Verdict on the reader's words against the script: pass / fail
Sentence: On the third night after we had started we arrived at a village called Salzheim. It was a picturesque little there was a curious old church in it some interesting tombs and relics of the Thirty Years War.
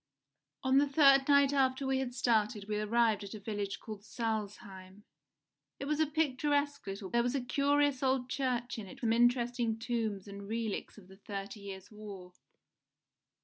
pass